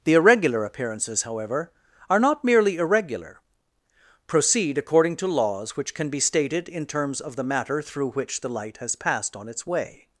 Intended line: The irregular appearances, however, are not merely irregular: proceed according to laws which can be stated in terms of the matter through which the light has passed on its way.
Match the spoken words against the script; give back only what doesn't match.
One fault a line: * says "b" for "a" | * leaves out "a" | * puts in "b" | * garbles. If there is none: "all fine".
all fine